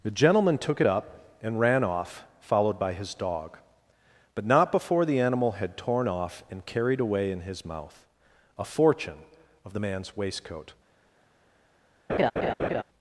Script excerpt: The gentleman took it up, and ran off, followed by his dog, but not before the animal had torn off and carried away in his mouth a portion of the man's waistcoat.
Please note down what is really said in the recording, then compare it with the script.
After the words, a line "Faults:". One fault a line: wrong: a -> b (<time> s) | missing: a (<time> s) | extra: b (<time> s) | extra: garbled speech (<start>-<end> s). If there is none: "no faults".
The gentleman took it up, and ran off, followed by his dog, but not before the animal had torn off and carried away in his mouth a fortune of the man's waistcoat.
Faults:
wrong: portion -> fortune (8.6 s)